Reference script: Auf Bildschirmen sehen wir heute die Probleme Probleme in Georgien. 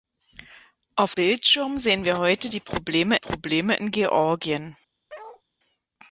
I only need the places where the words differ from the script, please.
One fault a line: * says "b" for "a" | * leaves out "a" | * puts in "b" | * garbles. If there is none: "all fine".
all fine